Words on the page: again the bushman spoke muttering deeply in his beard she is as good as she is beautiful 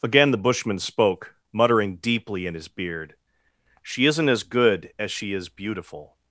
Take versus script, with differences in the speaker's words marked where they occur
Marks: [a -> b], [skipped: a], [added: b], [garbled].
again the bushman spoke muttering deeply in his beard she [is -> isn't] as good as she is beautiful